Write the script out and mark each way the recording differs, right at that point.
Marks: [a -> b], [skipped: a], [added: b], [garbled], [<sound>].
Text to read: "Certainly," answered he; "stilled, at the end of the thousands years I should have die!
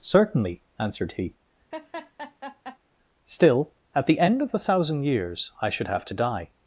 "Certainly," answered he; [laugh] ["stilled, -> still] at the end of the [thousands -> thousand] years I should have [added: to] die!